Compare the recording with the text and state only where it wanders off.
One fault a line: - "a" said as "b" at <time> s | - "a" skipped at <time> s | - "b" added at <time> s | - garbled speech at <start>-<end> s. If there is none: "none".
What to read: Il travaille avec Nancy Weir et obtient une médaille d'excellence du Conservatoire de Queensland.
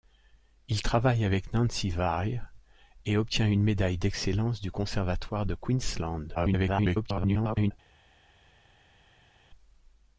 - garbled speech at 6.3-7.7 s